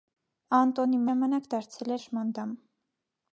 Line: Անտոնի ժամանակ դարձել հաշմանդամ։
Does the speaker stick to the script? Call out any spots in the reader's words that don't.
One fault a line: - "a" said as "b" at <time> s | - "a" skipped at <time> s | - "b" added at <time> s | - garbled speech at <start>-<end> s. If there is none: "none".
none